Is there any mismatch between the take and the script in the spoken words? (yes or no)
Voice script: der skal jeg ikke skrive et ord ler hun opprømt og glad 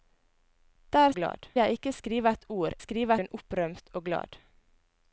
yes